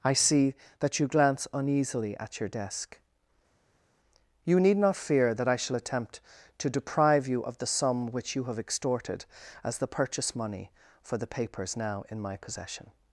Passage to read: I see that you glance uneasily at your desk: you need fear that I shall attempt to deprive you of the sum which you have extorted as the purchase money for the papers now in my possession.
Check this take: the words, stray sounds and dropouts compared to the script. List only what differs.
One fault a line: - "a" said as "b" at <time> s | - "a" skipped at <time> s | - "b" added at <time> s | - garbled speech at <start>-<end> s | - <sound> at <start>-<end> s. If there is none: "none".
- "not" added at 4.8 s